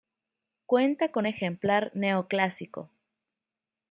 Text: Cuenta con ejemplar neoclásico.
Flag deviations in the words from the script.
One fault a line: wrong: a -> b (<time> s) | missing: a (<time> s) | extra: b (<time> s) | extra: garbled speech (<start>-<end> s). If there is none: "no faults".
no faults